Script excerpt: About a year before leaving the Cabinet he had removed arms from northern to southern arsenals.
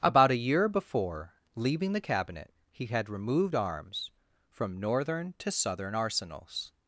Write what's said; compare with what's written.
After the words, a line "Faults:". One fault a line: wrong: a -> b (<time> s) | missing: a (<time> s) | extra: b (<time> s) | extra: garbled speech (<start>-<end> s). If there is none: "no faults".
About a year before leaving the Cabinet he had removed arms from northern to southern arsenals.
Faults:
no faults